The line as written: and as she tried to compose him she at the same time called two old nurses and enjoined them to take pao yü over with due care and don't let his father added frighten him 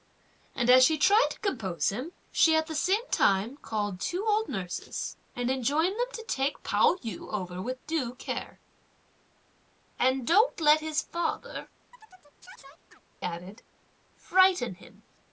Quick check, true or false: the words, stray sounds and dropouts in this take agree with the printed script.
false